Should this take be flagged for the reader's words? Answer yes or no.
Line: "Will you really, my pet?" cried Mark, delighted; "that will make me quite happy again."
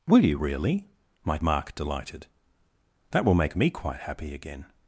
yes